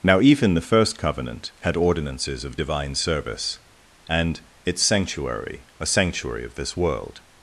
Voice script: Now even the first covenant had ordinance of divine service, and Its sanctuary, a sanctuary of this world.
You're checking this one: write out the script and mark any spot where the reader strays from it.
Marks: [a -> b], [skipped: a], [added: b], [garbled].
Now even the first covenant had [ordinance -> ordinances] of divine service, and Its sanctuary, a sanctuary of this world.